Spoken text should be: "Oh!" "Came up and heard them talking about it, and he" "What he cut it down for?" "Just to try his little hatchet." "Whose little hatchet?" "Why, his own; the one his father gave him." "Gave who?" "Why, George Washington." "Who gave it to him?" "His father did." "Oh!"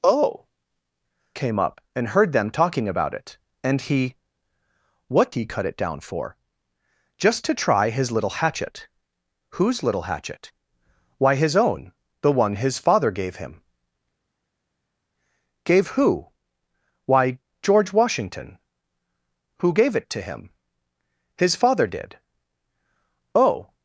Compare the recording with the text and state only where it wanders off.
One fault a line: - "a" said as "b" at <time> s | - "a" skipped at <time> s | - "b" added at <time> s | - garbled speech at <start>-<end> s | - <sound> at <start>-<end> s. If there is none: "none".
none